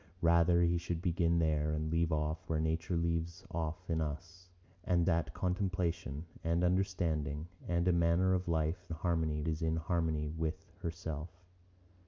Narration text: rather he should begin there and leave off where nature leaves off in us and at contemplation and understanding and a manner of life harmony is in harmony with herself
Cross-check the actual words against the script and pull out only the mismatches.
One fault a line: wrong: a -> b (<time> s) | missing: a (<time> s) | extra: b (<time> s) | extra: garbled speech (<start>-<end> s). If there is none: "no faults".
no faults